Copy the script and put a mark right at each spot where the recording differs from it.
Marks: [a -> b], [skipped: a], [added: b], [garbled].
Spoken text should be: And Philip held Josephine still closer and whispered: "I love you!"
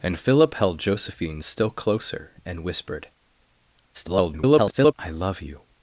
And Philip held Josephine still closer and whispered: [garbled] "I love you!"